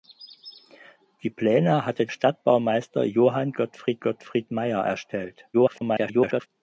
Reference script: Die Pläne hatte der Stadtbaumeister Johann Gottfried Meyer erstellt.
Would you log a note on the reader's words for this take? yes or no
yes